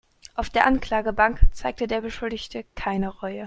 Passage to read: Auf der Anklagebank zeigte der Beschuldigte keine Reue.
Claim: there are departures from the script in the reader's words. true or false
false